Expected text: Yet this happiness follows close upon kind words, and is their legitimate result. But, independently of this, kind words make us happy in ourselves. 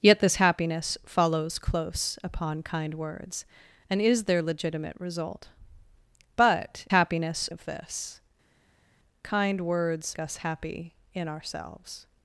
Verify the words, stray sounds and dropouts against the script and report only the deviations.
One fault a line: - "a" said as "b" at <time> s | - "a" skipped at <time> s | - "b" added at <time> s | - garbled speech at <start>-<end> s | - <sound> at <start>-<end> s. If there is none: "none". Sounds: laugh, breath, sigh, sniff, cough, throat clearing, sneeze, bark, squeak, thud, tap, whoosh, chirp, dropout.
- "independently" said as "happiness" at 6.9 s
- "make" skipped at 10.2 s